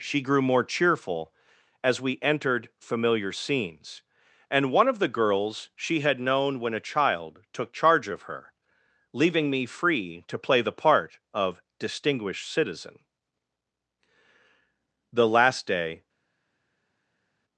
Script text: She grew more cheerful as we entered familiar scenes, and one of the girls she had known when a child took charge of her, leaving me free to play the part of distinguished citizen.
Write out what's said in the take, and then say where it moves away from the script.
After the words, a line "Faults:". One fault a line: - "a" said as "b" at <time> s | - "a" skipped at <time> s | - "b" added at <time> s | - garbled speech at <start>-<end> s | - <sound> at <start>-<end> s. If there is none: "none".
She grew more cheerful as we entered familiar scenes, and one of the girls she had known when a child took charge of her, leaving me free to play the part of distinguished citizen. The last day
Faults:
- "The last day" added at 15.1 s